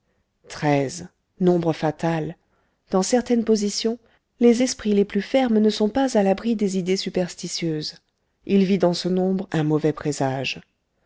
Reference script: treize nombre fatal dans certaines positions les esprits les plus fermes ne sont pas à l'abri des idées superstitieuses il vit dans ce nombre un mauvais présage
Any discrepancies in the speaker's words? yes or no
no